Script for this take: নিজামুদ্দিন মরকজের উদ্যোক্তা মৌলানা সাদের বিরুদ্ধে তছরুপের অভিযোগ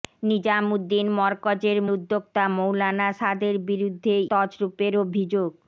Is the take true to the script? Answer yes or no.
yes